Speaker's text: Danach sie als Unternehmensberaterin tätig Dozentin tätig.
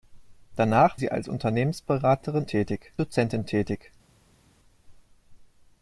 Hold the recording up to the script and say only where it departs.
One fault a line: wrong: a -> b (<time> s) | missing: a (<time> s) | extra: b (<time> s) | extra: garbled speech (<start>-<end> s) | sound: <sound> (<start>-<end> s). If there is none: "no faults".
no faults